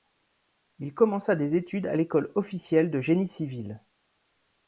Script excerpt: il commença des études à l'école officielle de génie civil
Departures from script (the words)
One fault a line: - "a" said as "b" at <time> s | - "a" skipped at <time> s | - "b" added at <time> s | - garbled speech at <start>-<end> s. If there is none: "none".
none